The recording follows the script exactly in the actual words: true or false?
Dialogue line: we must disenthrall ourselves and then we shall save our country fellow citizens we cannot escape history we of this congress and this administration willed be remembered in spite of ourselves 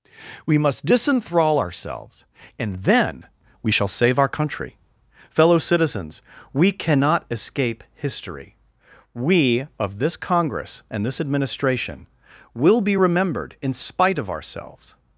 false